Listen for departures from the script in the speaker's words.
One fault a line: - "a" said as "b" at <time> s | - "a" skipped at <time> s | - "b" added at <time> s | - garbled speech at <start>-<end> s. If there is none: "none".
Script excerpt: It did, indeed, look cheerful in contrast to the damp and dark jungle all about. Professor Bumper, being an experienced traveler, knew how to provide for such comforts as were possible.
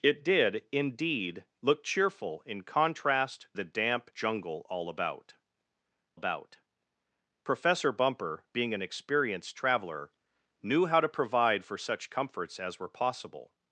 - "to" skipped at 3.5 s
- "and dark" skipped at 4.1 s
- "about" added at 6.1 s